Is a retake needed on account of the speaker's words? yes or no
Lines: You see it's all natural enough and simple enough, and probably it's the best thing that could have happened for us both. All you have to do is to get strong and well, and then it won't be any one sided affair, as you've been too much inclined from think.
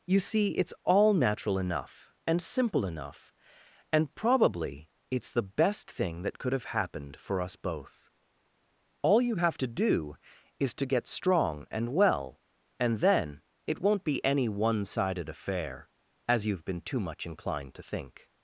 yes